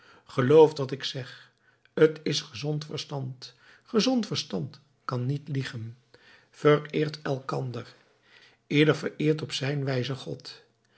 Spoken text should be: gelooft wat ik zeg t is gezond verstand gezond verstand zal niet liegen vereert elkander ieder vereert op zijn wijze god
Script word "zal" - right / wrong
wrong